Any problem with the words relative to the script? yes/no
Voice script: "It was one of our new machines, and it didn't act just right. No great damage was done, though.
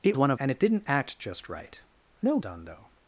yes